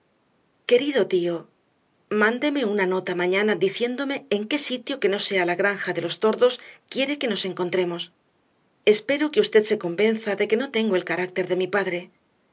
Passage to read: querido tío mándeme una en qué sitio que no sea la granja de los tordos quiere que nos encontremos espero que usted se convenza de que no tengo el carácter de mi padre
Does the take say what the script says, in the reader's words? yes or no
no